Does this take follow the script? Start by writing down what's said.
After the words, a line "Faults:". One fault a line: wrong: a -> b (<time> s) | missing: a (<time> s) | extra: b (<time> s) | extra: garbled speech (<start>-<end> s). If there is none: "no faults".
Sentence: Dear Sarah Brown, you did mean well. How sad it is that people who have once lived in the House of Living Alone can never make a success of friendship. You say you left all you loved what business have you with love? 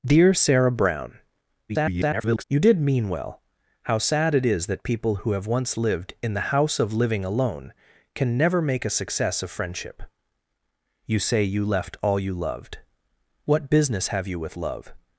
Dear Sarah Brown, [garbled] you did mean well. How sad it is that people who have once lived in the House of Living Alone can never make a success of friendship. You say you left all you loved what business have you with love?
Faults:
extra: garbled speech (1.7-2.4 s)